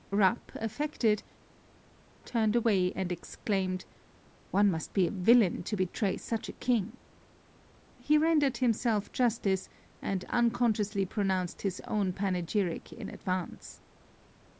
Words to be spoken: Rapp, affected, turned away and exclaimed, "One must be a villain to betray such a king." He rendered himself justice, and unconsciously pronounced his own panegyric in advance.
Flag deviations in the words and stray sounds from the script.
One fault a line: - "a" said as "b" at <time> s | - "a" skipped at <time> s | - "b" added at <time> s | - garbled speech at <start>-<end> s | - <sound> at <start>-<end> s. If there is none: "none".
none